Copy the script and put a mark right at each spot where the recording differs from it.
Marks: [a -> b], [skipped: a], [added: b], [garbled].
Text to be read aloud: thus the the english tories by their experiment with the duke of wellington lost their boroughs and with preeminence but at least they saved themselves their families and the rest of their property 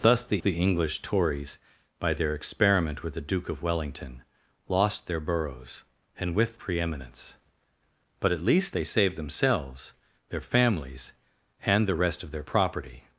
thus the the english tories by their experiment with the duke of wellington lost their boroughs and with preeminence but at least they saved themselves their families and the rest of their property